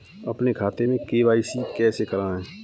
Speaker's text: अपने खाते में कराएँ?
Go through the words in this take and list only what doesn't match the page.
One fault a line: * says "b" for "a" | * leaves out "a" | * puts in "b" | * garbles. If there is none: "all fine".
* puts in "के.वाई.सी कैसे"